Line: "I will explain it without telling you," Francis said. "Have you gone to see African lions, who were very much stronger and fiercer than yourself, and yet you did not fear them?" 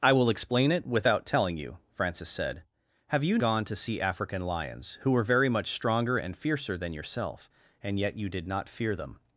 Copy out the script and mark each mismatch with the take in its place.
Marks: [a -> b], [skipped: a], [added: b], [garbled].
"I will explain it without telling you," Francis said. "Have you gone to see African lions, who were very much stronger and fiercer than yourself, and yet you did not fear them?"